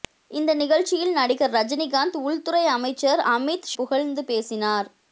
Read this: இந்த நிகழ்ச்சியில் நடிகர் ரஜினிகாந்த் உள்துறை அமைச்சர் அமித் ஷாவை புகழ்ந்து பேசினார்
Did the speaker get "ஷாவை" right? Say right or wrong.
wrong